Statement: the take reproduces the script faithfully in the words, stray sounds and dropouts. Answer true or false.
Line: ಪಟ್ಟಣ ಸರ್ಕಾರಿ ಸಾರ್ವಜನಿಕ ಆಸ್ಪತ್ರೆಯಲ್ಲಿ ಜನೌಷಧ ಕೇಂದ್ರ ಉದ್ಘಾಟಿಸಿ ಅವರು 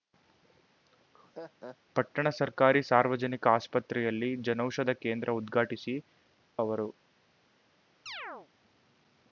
false